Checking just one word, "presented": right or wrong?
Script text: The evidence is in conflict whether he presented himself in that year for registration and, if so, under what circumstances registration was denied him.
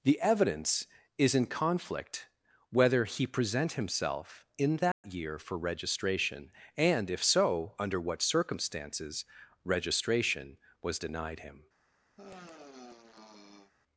wrong